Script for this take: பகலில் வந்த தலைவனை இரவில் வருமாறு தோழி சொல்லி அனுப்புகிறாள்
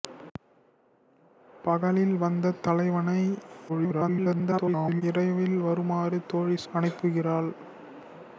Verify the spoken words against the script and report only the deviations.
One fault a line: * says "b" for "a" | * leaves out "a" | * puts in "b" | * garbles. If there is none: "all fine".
* garbles
* leaves out "சொல்லி"